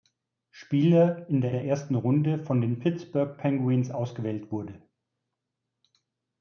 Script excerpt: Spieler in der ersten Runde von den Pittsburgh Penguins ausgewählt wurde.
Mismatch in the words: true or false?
true